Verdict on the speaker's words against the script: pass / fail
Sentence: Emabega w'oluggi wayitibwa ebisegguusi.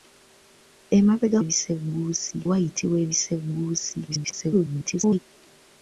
fail